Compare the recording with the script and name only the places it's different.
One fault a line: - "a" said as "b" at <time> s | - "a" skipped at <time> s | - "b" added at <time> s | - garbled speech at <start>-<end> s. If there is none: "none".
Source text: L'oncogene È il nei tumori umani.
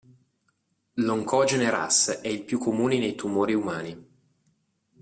- "Ras" added at 1.7 s
- "più comune" added at 2.4 s